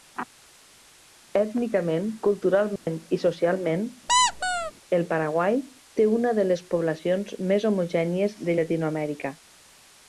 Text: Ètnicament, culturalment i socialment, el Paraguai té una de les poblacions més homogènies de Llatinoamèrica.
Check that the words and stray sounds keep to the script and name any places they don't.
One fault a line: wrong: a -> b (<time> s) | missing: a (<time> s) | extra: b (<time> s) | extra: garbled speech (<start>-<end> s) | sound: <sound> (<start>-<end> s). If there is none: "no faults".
sound: dropout (2.8-2.9 s)
sound: squeak (4.1-4.7 s)